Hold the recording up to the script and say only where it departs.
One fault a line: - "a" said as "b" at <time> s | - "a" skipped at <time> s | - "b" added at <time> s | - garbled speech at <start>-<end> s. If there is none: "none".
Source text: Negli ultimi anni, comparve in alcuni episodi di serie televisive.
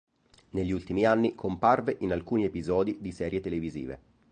none